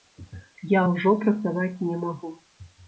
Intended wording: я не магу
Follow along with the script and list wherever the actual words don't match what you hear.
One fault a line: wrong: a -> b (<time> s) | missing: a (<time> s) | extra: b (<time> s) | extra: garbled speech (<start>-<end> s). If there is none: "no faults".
extra: ўжо працаваць (0.9 s)